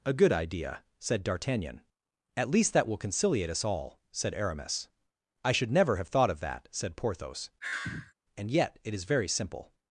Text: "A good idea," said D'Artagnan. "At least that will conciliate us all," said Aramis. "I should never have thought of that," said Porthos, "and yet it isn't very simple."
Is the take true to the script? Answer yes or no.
no